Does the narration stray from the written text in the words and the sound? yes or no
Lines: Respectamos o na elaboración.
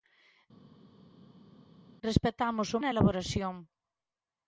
no